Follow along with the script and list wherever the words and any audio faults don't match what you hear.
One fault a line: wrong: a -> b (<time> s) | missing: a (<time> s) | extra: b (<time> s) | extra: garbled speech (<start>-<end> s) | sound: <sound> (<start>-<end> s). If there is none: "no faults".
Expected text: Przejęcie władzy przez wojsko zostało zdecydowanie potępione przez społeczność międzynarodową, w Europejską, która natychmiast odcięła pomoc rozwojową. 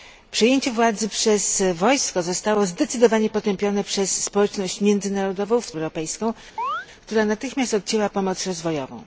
sound: chirp (6.6-6.9 s)